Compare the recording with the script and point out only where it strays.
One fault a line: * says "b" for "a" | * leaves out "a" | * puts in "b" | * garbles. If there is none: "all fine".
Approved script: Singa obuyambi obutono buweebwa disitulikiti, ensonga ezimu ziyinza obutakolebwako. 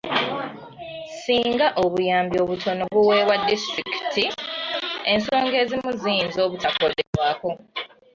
all fine